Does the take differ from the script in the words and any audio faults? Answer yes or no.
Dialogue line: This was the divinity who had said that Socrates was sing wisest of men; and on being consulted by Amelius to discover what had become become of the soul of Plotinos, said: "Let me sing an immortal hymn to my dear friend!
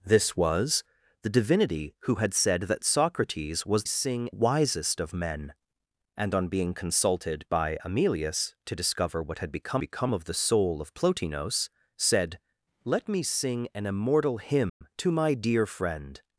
yes